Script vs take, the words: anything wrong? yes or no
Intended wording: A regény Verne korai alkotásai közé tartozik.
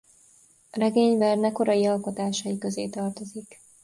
no